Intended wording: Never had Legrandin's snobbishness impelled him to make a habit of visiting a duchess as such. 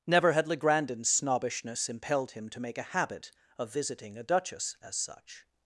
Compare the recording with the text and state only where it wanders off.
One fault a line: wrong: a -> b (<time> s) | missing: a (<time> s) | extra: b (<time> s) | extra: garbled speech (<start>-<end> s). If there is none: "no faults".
no faults